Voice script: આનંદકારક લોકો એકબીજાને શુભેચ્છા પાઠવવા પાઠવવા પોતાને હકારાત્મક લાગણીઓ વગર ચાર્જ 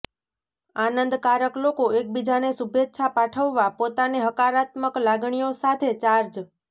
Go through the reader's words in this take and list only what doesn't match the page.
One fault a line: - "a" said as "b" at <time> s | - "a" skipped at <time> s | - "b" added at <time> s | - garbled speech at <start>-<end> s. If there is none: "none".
- "પાઠવવા" skipped at 3.7 s
- "વગર" said as "સાથે" at 5.6 s